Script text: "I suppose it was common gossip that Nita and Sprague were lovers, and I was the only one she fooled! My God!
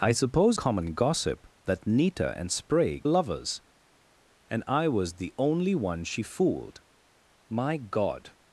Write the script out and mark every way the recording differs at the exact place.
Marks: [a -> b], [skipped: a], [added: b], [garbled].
"I suppose [skipped: it was] common gossip that Nita and Sprague [skipped: were] lovers, and I was the only one she fooled! My God!